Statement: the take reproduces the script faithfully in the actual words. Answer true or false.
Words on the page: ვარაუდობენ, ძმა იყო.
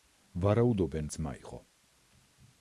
true